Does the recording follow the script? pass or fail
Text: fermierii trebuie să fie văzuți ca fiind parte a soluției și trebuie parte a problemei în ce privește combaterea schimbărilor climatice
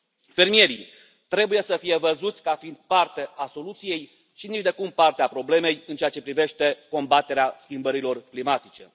fail